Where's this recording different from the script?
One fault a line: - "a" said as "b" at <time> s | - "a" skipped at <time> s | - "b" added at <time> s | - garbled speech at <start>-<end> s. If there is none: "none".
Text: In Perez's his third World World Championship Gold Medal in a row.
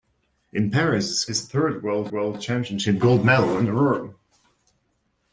none